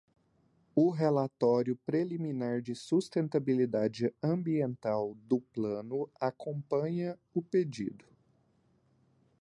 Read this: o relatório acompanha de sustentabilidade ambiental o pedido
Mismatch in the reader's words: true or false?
true